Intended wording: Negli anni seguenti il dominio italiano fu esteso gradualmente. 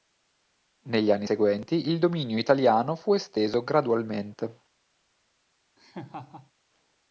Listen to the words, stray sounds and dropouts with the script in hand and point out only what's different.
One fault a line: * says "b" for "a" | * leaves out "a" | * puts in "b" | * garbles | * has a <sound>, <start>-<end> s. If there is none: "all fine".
* has a laugh, 5.8-6.5 s